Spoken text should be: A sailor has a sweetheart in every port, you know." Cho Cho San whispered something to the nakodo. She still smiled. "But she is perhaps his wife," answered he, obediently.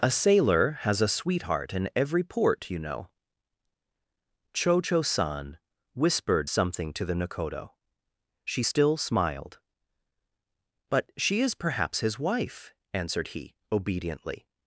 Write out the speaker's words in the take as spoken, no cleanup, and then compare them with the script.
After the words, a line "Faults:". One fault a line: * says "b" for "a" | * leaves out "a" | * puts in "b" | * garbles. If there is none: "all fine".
A sailor has a sweetheart in every port, you know." Cho Cho San whispered something to the nakodo. She still smiled. "But she is perhaps his wife," answered he, obediently.
Faults:
all fine